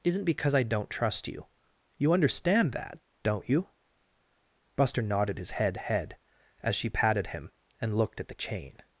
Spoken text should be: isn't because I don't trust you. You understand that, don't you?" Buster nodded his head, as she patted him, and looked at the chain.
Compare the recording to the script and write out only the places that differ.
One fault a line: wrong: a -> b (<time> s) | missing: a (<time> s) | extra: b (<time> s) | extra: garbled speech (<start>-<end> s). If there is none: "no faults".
extra: head (5.8 s)